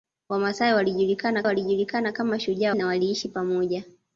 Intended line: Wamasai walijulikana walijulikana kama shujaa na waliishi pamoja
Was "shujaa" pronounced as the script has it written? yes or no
yes